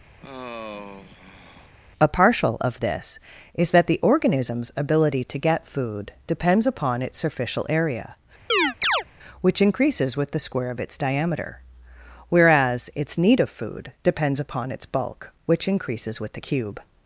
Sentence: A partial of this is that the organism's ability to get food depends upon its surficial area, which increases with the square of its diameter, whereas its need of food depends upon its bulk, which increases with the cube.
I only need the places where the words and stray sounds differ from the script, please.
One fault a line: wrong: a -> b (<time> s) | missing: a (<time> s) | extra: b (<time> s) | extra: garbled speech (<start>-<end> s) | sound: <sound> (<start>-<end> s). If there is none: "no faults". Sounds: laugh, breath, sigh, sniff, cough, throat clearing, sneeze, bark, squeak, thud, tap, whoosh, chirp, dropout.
sound: sigh (0.2-1.7 s)
sound: chirp (8.5-9.0 s)